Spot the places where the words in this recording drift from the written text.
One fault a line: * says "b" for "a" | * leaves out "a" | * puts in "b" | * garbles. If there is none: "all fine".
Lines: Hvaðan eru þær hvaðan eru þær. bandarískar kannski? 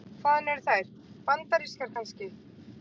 * leaves out "hvaðan eru þær"